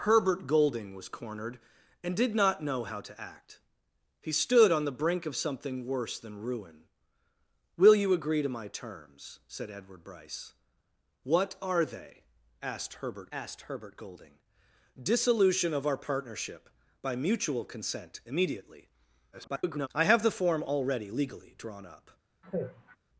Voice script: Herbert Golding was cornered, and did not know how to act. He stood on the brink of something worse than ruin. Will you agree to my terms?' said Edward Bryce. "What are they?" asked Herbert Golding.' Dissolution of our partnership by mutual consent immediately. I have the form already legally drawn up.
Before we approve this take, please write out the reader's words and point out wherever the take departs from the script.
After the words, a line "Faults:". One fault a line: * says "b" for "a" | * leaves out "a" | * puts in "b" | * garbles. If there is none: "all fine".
Herbert Golding was cornered, and did not know how to act. He stood on the brink of something worse than ruin. Will you agree to my terms?' said Edward Bryce. "What are they?" asked Herbert asked Herbert Golding.' Dissolution of our partnership by mutual consent immediately. [garbled] I have the form already legally drawn up.
Faults:
* puts in "asked Herbert"
* garbles